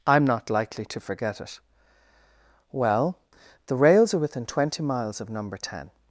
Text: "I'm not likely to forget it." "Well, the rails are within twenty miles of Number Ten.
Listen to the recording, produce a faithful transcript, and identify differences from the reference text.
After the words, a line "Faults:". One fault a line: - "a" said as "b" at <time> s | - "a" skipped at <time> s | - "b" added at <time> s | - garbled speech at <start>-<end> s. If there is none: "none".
"I'm not likely to forget it." "Well, the rails are within twenty miles of Number Ten.
Faults:
none